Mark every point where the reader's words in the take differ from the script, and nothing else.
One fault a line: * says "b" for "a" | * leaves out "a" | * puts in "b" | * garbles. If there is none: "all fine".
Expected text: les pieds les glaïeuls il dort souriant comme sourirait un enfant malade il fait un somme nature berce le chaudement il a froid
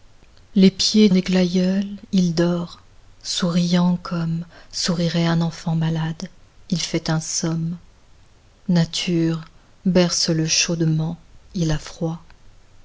all fine